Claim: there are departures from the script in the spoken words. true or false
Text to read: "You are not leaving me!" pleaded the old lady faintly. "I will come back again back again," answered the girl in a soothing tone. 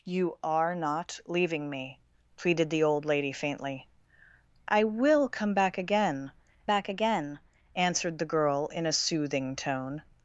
false